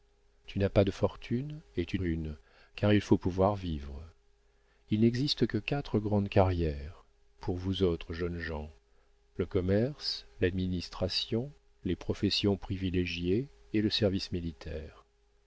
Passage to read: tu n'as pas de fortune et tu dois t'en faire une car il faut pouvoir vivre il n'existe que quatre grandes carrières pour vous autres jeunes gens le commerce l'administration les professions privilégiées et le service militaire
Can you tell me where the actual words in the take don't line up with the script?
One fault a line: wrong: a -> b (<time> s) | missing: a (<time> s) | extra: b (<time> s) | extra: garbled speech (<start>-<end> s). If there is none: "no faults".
missing: dois t'en faire (2.0 s)